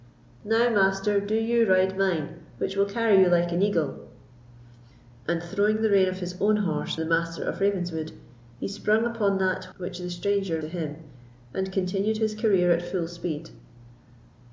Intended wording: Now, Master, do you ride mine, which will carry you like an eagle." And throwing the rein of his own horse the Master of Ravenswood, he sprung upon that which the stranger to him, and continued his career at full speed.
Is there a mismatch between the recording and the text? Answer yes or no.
no